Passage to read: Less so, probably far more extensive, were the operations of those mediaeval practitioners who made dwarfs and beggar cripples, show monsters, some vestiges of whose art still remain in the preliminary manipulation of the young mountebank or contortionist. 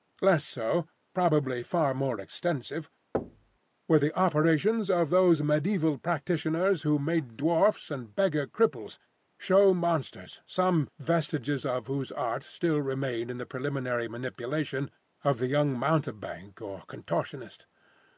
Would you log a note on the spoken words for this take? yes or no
no